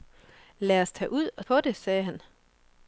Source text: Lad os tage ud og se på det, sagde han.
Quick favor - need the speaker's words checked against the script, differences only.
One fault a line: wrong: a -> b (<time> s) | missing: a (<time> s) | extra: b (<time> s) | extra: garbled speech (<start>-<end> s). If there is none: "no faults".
missing: se (1.4 s)